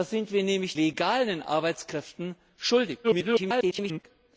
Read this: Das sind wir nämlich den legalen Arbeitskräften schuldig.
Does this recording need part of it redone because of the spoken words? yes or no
yes